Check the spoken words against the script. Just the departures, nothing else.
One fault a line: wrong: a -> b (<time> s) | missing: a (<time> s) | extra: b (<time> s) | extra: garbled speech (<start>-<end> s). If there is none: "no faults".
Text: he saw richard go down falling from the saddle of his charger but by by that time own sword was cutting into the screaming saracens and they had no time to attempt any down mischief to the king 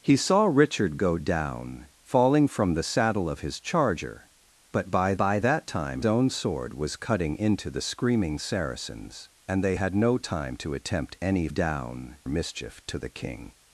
no faults